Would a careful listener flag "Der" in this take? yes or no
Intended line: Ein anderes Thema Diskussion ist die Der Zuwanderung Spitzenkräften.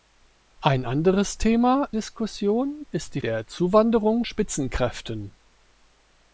no